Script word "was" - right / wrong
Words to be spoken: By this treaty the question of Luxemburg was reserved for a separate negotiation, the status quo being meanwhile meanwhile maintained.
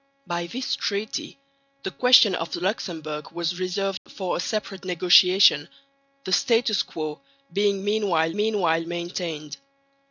right